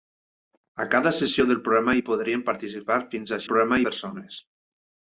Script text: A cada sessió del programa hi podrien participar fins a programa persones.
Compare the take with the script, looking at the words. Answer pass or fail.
pass